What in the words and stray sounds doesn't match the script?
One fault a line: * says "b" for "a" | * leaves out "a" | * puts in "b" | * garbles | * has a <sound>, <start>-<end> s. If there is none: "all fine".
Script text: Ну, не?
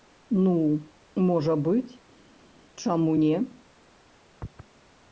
* puts in "можа быць чаму"